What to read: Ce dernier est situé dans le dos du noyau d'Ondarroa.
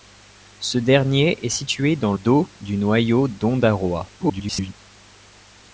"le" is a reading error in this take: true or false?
true